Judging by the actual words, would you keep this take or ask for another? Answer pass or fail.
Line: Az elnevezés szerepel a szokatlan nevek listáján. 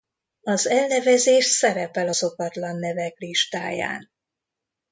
pass